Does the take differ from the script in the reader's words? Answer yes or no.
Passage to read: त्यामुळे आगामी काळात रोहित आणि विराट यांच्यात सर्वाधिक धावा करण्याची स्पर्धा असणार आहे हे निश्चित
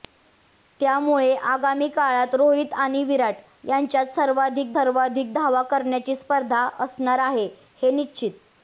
yes